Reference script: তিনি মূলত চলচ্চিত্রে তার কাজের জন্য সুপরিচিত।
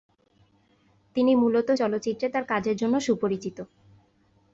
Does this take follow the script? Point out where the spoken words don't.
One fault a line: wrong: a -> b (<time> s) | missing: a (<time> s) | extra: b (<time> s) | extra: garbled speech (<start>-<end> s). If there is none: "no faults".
no faults